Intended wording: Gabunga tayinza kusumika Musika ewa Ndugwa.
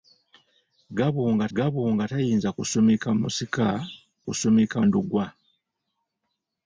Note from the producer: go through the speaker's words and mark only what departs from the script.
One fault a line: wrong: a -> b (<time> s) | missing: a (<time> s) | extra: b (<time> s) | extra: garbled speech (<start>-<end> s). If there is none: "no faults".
extra: gabunga (1.6 s)
wrong: ewa -> kusumika (4.3 s)